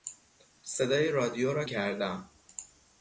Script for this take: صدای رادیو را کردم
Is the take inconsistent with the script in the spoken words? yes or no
no